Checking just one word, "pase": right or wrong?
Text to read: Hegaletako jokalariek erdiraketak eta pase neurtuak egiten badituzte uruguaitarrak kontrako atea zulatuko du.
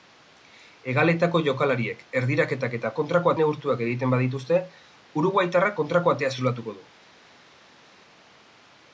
wrong